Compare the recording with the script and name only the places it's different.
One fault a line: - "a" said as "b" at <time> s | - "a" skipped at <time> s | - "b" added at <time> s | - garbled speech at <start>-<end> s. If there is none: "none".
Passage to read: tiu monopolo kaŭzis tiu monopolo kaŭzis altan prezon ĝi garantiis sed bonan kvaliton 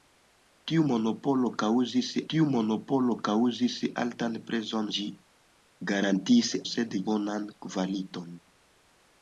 none